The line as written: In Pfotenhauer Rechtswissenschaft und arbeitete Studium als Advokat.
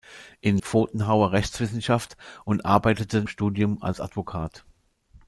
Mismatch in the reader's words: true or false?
false